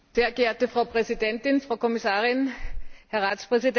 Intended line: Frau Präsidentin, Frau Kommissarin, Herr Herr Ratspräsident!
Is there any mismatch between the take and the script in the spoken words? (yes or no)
yes